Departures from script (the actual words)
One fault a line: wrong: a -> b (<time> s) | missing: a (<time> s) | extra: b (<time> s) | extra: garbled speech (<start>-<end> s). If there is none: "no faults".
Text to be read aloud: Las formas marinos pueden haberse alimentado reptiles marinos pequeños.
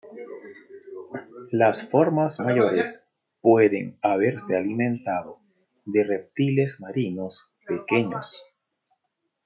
wrong: marinos -> mayores (2.4 s)
extra: de (5.8 s)